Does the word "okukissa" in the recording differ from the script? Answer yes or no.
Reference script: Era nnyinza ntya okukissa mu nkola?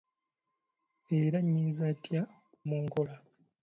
yes